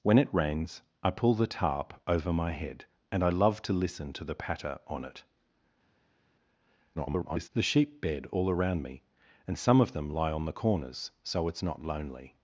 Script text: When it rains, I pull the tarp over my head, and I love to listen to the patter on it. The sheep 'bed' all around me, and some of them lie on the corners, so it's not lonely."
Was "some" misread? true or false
false